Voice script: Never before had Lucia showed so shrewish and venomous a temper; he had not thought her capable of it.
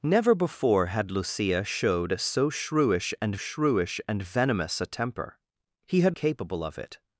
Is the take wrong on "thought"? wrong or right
wrong